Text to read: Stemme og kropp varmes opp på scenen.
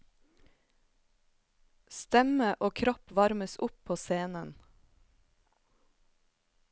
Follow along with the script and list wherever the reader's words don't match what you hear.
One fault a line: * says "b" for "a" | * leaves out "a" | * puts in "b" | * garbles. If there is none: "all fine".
all fine